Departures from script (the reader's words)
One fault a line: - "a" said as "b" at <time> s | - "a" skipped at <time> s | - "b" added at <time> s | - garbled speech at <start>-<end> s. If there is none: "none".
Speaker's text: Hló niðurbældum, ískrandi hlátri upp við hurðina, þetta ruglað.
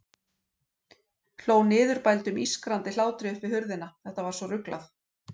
- "var svo" added at 4.3 s